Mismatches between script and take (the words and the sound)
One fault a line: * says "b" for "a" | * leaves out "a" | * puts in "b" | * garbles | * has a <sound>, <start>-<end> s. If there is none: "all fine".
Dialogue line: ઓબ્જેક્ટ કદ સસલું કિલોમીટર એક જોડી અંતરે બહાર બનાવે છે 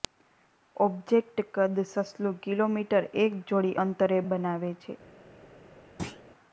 * leaves out "બહાર"
* has a thud, 6.0-6.2 s